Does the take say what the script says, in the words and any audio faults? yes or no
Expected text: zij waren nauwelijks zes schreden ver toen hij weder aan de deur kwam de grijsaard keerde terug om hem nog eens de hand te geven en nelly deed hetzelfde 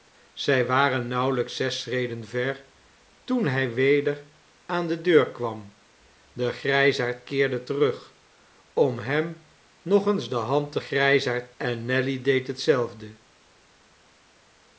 no